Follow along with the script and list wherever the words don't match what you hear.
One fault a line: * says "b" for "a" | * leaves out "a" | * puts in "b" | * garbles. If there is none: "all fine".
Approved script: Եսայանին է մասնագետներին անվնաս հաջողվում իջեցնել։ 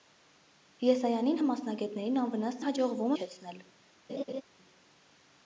all fine